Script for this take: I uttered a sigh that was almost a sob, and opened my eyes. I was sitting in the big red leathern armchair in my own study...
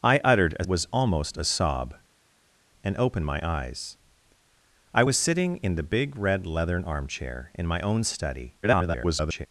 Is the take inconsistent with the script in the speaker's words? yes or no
yes